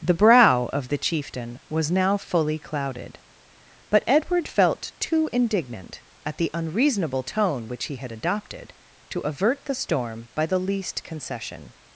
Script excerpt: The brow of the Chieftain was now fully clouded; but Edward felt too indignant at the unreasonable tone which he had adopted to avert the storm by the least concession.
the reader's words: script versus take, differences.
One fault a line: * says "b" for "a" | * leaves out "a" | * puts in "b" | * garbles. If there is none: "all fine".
all fine